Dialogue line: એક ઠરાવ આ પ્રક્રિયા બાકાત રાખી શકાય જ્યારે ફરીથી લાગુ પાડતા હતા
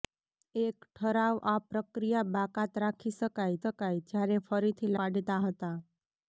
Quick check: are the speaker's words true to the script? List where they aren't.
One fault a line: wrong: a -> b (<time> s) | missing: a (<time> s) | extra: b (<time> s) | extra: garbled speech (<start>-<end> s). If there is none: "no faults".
extra: શકાય (3.6 s)
missing: લાગુ (4.9 s)